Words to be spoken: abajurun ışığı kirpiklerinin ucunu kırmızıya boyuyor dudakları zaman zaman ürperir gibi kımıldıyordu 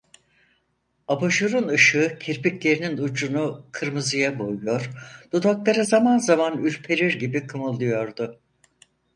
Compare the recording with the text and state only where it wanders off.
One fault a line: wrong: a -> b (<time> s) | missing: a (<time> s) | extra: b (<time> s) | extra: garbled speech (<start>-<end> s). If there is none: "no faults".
no faults